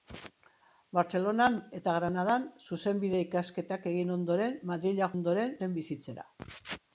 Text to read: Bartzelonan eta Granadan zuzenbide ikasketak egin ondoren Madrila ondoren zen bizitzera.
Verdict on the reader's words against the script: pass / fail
pass